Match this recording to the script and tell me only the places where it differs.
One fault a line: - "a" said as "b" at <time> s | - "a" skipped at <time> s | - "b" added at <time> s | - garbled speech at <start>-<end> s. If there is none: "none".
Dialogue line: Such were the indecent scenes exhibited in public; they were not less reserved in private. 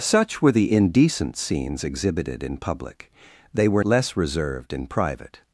- "not" skipped at 3.8 s